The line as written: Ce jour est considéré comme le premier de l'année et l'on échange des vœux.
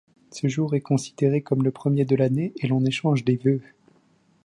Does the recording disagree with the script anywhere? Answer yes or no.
no